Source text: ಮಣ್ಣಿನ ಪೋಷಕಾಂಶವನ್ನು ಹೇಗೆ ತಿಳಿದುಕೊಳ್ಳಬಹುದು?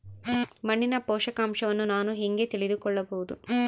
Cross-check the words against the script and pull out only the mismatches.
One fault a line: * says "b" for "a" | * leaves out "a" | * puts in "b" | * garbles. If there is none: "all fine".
* puts in "ನಾನು"